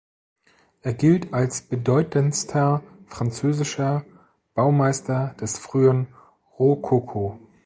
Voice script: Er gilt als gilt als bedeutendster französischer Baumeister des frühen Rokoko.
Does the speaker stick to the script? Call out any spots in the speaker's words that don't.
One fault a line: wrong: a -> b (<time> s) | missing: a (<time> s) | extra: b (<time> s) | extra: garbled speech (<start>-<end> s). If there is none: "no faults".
missing: gilt als (1.6 s)